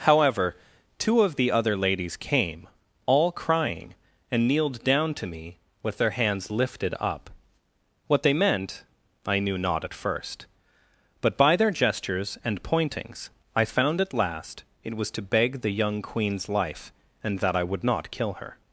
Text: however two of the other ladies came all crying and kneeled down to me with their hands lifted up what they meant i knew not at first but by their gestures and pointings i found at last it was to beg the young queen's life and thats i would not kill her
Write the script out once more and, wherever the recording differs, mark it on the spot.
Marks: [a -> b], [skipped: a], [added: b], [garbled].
however two of the other ladies came all crying and kneeled down to me with their hands lifted up what they meant i knew not at first but by their gestures and pointings i found at last it was to beg the young queen's life and [thats -> that] i would not kill her